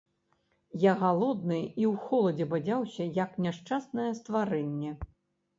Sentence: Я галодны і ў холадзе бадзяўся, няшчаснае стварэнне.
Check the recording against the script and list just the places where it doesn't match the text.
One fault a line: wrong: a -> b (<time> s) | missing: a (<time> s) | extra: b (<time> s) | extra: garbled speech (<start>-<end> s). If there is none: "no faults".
extra: як (3.2 s)